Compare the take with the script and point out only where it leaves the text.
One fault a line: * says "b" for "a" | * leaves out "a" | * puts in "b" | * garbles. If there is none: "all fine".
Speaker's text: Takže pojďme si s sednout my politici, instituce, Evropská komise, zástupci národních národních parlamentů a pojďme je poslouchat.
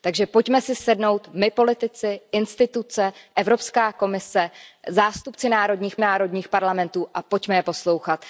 all fine